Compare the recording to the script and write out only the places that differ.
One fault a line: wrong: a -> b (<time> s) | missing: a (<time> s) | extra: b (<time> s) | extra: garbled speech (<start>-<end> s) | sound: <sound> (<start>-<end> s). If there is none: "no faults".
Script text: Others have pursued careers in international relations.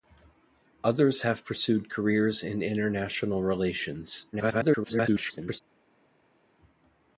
extra: garbled speech (4.3-5.6 s)